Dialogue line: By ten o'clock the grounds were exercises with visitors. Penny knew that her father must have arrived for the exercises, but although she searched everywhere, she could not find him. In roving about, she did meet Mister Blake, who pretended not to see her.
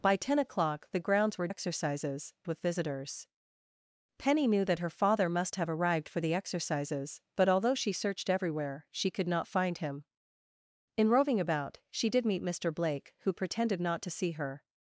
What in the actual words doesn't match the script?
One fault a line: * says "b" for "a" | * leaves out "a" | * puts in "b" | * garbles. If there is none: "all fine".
all fine